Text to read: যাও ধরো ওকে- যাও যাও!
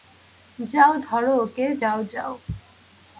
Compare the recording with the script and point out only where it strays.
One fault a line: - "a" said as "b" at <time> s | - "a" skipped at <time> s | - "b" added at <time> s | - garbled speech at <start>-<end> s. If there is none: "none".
none